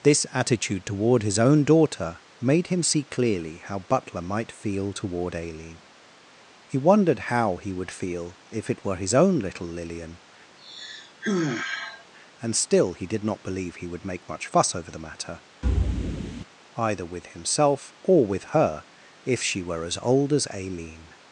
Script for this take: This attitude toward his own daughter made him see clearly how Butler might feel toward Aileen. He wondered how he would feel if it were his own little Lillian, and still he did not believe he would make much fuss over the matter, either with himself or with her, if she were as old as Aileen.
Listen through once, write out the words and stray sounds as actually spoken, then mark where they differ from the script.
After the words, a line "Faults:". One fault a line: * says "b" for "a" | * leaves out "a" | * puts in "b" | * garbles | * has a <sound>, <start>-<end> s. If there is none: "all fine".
This attitude toward his own daughter made him see clearly how Butler might feel toward Aileen. He wondered how he would feel if it were his own little Lillian, and still he did not believe he would make much fuss over the matter, either with himself or with her, if she were as old as Aileen.
Faults:
* has a sigh, 10.6-12.1 s
* has a thud, 15.6-16.4 s